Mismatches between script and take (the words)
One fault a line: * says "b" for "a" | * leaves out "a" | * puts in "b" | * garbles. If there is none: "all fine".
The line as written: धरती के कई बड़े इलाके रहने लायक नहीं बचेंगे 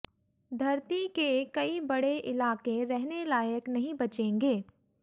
all fine